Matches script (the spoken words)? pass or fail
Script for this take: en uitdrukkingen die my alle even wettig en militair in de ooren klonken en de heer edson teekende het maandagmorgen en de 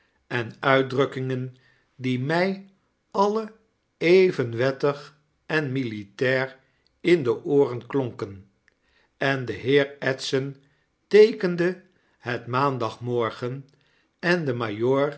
pass